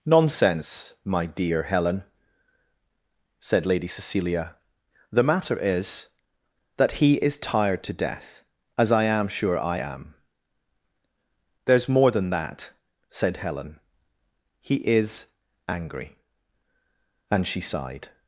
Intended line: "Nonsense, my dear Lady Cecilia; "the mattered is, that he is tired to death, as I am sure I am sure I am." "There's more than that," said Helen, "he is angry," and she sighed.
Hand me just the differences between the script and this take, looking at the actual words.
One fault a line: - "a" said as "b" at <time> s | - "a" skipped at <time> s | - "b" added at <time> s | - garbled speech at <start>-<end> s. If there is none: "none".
- "Helen said" added at 1.6 s
- "mattered" said as "matter" at 5.2 s
- "sure I am" skipped at 10.1 s